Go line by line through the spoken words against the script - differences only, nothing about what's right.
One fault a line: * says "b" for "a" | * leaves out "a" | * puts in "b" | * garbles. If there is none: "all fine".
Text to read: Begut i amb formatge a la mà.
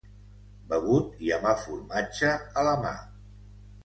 * puts in "el"